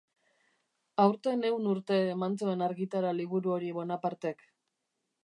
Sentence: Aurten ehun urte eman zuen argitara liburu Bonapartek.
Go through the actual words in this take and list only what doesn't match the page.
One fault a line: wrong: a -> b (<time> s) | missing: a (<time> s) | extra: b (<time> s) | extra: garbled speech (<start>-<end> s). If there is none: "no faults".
extra: hori (3.6 s)